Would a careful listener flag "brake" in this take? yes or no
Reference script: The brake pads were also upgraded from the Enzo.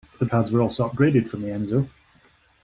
yes